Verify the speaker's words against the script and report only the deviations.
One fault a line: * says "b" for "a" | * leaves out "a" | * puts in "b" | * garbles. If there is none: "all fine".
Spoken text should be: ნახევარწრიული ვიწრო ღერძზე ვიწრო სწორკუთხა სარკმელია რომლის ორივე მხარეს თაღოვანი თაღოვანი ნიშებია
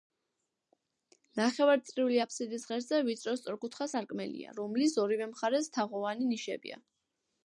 * says "აფსიდის" for "ვიწრო"
* leaves out "თაღოვანი"